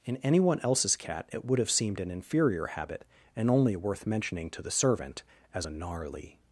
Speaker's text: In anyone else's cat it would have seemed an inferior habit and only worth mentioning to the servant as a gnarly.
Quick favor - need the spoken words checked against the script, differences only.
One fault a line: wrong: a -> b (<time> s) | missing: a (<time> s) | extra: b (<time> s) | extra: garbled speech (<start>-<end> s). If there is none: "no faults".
no faults